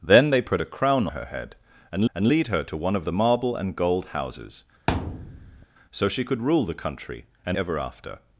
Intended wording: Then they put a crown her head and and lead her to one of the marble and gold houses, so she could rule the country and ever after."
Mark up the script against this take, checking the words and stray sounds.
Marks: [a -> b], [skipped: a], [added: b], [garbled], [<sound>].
Then they put a crown her head and and lead her to one of the marble and gold houses, [thud] so she could rule the country and ever after."